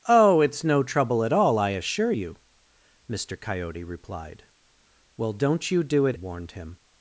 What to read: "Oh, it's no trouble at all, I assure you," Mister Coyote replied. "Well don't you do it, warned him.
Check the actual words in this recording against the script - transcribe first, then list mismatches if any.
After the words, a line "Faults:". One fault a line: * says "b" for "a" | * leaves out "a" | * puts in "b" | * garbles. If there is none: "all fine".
"Oh, it's no trouble at all, I assure you," Mister Coyote replied. "Well don't you do it, warned him.
Faults:
all fine